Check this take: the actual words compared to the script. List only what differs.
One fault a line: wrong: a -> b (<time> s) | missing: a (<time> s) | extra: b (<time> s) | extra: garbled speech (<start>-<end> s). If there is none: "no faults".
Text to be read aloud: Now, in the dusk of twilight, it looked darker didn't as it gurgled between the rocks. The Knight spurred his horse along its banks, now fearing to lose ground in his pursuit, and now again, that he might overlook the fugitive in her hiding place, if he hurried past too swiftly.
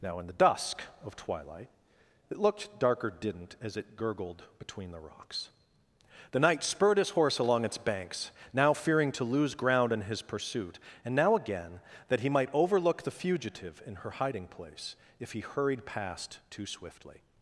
no faults